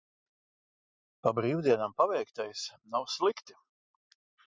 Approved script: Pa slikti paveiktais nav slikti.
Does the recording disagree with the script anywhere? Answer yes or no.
yes